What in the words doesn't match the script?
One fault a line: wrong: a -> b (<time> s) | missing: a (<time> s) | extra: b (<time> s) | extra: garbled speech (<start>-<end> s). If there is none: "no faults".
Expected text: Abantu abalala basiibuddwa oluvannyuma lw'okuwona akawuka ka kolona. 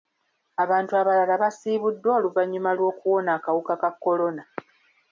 no faults